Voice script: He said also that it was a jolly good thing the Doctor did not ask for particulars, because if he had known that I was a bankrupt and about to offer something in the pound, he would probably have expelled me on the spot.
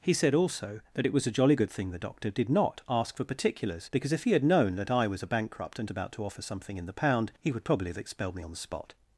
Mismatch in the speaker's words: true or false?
false